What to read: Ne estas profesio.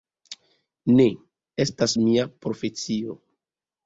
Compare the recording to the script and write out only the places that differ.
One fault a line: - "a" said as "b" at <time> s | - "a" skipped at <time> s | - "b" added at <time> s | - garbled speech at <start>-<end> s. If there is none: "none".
- "mia" added at 2.0 s